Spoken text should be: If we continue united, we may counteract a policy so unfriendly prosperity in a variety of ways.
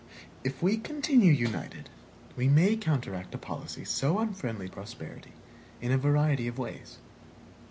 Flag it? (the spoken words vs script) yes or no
no